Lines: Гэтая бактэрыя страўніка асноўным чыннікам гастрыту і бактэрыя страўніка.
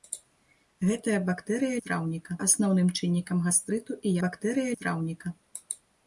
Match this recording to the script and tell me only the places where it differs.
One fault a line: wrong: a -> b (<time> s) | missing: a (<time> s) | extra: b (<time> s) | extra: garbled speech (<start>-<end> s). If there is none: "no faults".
no faults